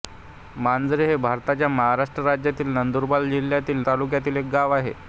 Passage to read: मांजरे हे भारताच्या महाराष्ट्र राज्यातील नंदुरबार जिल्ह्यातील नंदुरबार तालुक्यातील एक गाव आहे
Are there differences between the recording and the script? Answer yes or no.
yes